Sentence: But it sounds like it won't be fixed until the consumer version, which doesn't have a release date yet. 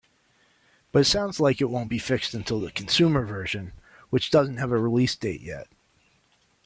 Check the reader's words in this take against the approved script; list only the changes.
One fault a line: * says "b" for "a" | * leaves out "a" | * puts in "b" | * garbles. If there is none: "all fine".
all fine